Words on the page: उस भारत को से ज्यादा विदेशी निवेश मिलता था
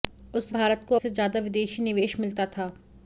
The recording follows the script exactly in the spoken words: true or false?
true